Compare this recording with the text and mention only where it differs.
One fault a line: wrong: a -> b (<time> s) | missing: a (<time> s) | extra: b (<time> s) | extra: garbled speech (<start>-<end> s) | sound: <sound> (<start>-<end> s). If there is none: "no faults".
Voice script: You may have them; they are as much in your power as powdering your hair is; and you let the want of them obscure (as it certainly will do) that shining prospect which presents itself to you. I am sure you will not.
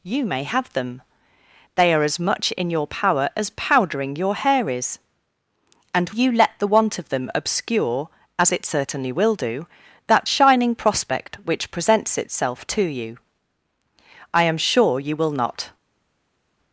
no faults